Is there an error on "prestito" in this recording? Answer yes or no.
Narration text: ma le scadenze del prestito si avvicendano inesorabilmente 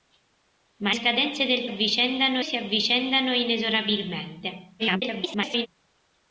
yes